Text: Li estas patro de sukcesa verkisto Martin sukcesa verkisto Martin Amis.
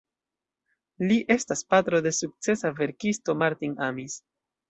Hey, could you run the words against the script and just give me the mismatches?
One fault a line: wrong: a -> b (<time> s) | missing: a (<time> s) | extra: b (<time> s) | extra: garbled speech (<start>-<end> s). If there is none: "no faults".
missing: sukcesa verkisto Martin (3.8 s)